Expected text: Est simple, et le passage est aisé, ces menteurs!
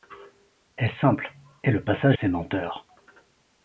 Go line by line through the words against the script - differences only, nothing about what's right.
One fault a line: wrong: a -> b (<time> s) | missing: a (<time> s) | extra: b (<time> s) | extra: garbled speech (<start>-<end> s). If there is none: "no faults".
missing: est aisé (2.2 s)